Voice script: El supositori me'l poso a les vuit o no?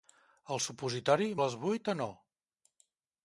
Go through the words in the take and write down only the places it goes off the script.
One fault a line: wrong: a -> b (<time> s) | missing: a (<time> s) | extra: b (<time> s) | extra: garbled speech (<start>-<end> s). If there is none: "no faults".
missing: me'l poso (1.3 s)